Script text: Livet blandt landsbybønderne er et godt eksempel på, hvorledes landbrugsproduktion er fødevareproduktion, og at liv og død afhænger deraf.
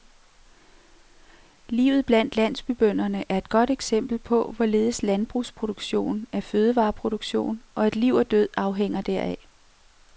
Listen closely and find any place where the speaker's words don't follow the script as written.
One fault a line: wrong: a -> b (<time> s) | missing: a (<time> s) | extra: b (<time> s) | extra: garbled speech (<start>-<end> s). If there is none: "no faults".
no faults